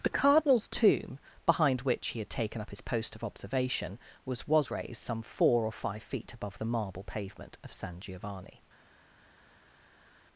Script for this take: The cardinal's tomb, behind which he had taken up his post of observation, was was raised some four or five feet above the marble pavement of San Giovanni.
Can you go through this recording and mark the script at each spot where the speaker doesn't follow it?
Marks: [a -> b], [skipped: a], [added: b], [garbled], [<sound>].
The cardinal's tomb, behind which he had taken up his post of observation, was was raised some four or five feet above the marble pavement of San Giovanni.